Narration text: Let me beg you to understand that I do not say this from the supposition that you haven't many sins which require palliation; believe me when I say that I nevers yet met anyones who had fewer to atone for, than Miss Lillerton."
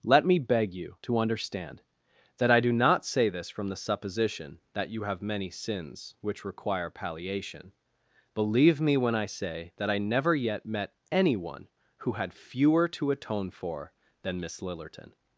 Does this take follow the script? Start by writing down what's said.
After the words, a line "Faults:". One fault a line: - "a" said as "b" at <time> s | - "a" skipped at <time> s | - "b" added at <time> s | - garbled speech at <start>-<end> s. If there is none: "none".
Let me beg you to understand that I do not say this from the supposition that you have many sins which require palliation; believe me when I say that I never yet met anyone who had fewer to atone for, than Miss Lillerton."
Faults:
- "haven't" said as "have" at 5.0 s
- "nevers" said as "never" at 10.0 s
- "anyones" said as "anyone" at 11.1 s